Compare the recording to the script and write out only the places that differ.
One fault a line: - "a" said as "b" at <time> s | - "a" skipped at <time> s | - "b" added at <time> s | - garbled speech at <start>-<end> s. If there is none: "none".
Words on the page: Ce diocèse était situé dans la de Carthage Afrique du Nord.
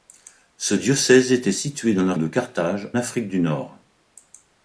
none